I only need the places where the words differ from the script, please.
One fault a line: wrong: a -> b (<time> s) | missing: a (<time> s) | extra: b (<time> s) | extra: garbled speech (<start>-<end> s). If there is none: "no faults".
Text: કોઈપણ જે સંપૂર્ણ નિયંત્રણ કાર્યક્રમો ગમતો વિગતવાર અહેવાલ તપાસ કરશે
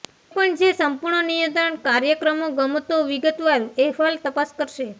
no faults